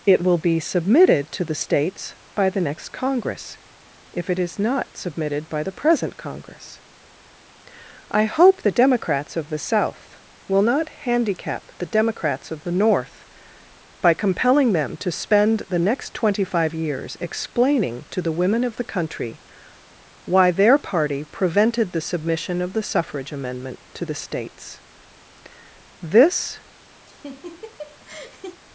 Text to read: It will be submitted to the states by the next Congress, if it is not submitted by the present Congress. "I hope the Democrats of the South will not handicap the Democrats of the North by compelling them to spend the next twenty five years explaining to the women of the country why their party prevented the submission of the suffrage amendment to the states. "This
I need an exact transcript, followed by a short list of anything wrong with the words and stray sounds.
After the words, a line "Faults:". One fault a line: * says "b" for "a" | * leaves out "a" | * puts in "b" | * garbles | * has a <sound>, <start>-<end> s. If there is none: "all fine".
It will be submitted to the states by the next Congress, if it is not submitted by the present Congress. "I hope the Democrats of the South will not handicap the Democrats of the North by compelling them to spend the next twenty five years explaining to the women of the country why their party prevented the submission of the suffrage amendment to the states. "This
Faults:
* has a laugh, 27.1-28.6 s